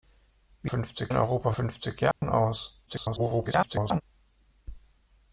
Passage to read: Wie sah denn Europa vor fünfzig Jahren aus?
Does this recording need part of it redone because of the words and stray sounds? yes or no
yes